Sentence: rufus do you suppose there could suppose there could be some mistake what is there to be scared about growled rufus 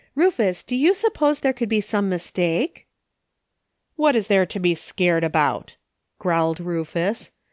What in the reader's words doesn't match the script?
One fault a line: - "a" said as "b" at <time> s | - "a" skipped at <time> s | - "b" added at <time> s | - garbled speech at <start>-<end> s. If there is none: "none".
- "suppose there could" skipped at 1.7 s